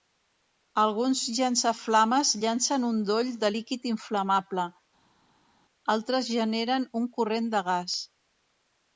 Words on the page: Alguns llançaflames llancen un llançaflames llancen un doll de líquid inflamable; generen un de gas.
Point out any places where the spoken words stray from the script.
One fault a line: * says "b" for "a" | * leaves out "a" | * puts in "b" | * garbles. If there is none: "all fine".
* leaves out "llançaflames llancen un"
* puts in "altres"
* puts in "corrent"